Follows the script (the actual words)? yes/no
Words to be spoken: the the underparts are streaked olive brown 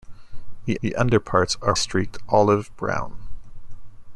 yes